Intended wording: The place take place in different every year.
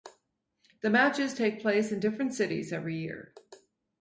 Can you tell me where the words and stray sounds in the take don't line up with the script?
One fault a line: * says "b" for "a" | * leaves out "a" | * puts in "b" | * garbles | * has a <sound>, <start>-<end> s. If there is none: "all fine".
* says "matches" for "place"
* puts in "cities"